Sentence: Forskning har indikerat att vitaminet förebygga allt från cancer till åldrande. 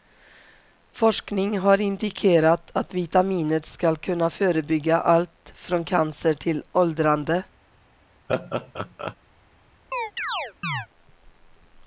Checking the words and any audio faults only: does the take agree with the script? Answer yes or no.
no